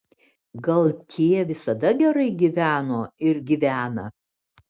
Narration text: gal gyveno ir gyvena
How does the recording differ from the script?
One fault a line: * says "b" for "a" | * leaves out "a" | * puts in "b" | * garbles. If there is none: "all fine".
* puts in "tie visada gerai"